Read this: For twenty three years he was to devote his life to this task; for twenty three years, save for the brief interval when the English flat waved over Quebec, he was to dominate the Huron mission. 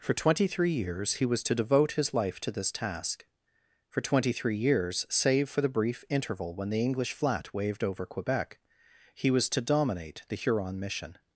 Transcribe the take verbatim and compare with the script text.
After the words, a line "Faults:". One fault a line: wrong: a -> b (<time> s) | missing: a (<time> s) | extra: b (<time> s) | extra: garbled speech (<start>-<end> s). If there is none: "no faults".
For twenty three years he was to devote his life to this task; for twenty three years, save for the brief interval when the English flat waved over Quebec, he was to dominate the Huron mission.
Faults:
no faults